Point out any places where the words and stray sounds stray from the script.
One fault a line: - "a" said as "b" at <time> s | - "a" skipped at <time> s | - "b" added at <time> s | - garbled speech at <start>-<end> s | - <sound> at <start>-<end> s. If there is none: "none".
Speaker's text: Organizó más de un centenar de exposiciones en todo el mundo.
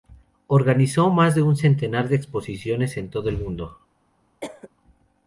- cough at 4.4-4.7 s